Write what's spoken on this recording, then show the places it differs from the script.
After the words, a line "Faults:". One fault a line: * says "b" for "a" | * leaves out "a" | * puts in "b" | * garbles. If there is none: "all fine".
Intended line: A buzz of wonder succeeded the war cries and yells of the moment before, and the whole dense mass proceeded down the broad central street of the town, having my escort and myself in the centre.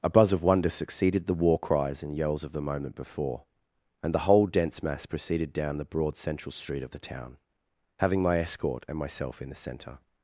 A buzz of wonder succeeded the war cries and yells of the moment before, and the whole dense mass proceeded down the broad central street of the town, having my escort and myself in the centre.
Faults:
all fine